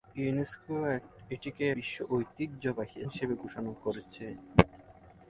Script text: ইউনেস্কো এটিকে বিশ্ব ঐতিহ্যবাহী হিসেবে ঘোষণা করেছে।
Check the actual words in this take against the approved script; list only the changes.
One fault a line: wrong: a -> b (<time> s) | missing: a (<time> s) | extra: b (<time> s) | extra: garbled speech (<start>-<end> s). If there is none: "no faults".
no faults